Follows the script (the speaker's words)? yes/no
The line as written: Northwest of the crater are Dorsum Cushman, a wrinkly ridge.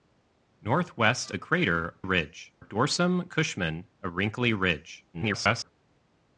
no